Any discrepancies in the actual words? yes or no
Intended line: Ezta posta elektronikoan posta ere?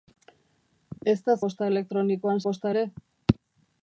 no